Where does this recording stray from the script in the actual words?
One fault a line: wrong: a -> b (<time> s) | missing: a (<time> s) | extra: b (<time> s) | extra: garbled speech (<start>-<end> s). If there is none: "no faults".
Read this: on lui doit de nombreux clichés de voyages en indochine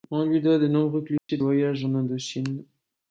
no faults